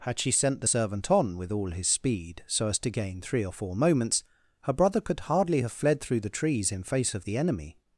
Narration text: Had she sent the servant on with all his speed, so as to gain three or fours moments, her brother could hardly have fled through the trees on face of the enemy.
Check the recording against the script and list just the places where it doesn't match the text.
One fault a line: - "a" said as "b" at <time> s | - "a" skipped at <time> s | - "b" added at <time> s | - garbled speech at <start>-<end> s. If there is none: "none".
- "fours" said as "four" at 3.5 s
- "on" said as "in" at 6.7 s